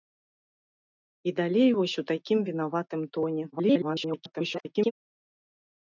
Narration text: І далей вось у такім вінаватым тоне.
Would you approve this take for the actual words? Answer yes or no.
no